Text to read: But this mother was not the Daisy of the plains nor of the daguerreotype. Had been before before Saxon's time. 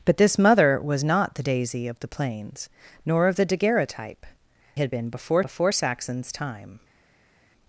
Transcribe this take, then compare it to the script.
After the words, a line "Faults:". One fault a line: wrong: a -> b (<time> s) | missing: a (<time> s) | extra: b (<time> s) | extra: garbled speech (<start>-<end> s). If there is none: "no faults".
But this mother was not the Daisy of the plains nor of the daguerreotype. Had been before before Saxon's time.
Faults:
no faults